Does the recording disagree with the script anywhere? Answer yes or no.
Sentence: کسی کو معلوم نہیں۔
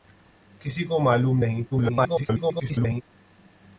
yes